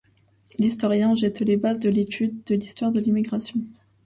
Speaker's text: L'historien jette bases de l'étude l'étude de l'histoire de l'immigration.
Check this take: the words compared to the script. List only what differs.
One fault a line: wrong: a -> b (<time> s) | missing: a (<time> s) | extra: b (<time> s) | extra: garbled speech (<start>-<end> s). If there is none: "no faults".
extra: les (1.4 s)
missing: l'étude (2.4 s)